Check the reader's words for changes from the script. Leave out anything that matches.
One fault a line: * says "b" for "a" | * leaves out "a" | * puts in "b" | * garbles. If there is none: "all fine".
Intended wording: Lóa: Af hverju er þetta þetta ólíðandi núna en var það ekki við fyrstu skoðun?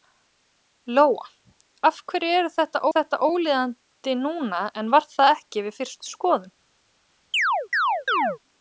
all fine